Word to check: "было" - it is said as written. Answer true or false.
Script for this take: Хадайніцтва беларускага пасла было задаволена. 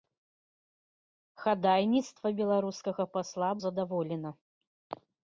false